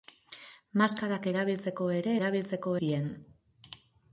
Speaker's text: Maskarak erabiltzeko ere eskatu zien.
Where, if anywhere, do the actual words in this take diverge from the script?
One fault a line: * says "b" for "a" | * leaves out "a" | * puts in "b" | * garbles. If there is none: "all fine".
* says "erabiltzeko" for "eskatu"